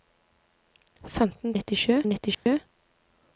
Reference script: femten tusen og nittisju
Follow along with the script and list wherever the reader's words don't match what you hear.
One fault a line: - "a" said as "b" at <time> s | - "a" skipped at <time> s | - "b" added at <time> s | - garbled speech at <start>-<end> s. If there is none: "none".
- "tusen" said as "nittisju" at 1.5 s